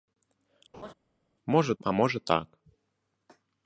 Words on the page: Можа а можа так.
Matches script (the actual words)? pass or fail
pass